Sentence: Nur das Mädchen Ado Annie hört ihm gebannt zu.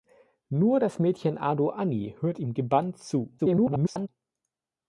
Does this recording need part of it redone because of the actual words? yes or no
yes